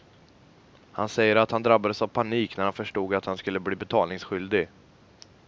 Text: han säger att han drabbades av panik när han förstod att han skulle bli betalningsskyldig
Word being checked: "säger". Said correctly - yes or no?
yes